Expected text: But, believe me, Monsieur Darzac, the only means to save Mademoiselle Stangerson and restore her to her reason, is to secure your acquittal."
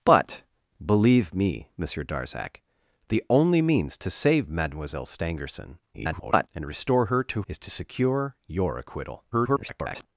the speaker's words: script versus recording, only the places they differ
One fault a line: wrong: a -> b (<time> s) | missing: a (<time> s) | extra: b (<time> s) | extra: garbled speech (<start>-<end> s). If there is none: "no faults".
extra: garbled speech (5.9-6.5 s)
missing: her reason (7.4 s)
extra: garbled speech (9.3-10.1 s)